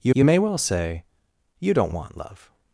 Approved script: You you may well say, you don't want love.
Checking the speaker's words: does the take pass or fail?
pass